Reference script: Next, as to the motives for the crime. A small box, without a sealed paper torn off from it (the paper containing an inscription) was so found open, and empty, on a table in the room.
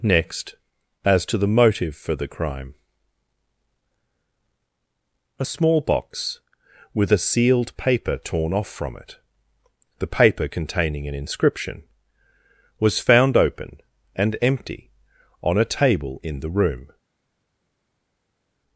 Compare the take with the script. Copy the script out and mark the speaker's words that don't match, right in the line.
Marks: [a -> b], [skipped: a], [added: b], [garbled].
Next, as to the [motives -> motive] for the crime. A small box, [without -> with] a sealed paper torn off from it (the paper containing an inscription) was [skipped: so] found open, and empty, on a table in the room.